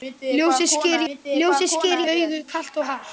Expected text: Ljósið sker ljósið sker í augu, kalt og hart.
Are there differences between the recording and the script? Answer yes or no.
no